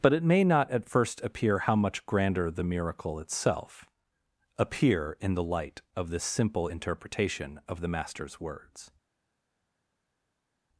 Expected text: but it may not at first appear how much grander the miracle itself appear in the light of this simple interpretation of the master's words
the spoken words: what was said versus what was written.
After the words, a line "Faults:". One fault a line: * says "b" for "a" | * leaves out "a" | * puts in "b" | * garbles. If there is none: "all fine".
but it may not at first appear how much grander the miracle itself appear in the light of this simple interpretation of the master's words
Faults:
all fine